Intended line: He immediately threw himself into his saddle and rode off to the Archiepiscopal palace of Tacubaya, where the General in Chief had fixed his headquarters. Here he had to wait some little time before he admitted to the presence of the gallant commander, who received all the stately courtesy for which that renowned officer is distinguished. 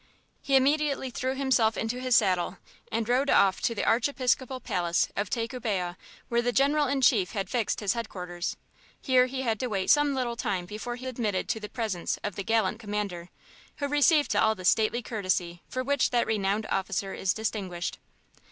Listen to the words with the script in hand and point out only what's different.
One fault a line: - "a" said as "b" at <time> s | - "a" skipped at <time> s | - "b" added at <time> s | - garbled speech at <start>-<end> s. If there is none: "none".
none